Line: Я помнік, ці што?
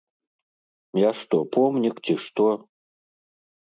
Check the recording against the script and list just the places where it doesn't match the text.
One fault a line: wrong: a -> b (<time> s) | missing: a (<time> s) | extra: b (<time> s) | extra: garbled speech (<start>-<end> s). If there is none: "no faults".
extra: што (1.2 s)